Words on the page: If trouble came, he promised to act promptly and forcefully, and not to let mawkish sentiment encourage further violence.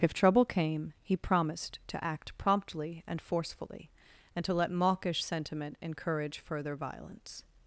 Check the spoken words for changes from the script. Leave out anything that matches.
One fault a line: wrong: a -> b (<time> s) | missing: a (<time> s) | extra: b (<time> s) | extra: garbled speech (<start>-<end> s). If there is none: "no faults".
missing: not (4.4 s)